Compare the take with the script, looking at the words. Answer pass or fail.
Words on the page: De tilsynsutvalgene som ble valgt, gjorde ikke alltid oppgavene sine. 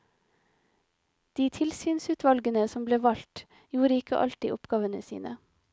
pass